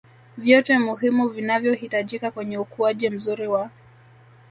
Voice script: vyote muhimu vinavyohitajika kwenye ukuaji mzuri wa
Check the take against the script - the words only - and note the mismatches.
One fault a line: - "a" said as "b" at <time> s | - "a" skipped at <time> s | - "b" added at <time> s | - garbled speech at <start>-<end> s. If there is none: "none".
none